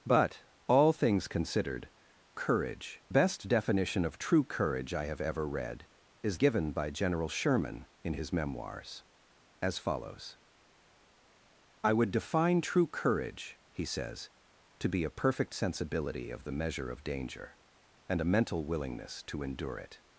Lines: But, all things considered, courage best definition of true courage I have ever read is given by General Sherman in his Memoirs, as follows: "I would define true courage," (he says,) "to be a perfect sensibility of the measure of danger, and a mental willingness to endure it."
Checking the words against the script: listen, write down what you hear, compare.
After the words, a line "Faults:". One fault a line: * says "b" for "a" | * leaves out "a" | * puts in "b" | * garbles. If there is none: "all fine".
But, all things considered, courage best definition of true courage I have ever read is given by General Sherman in his Memoirs, as follows: "I would define true courage," (he says,) "to be a perfect sensibility of the measure of danger, and a mental willingness to endure it."
Faults:
all fine